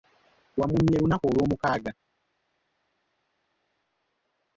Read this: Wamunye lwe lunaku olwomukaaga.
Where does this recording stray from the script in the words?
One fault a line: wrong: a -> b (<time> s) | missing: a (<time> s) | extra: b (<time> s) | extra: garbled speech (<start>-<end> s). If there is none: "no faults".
missing: lwe (1.0 s)